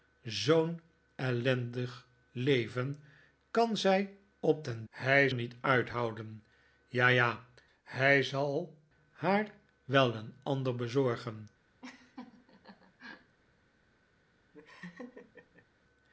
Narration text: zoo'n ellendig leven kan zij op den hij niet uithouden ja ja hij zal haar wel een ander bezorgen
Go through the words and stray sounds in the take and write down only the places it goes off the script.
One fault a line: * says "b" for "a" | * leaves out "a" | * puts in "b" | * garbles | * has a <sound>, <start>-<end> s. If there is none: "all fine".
* has a laugh, 11.8-13.4 s
* has a laugh, 14.5-15.7 s